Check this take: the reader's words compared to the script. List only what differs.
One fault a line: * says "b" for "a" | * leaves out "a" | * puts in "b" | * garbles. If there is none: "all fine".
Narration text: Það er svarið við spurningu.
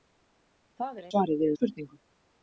all fine